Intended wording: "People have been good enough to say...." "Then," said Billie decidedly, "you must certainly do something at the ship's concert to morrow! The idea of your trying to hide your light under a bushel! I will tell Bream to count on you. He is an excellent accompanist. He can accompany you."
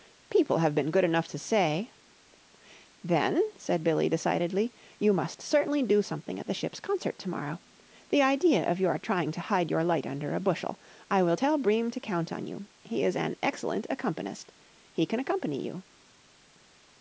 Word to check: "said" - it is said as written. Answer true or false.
true